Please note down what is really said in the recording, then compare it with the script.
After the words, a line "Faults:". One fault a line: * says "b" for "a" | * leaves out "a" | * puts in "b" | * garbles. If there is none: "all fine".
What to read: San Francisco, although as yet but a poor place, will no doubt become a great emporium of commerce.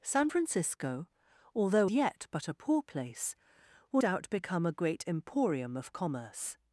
San Francisco, although yet but a poor place, will doubt become a great emporium of commerce.
Faults:
* leaves out "as"
* leaves out "no"